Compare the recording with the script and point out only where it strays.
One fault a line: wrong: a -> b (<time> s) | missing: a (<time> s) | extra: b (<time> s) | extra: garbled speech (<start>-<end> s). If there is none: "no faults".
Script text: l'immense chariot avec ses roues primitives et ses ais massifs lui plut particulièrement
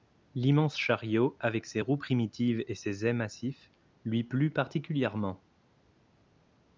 no faults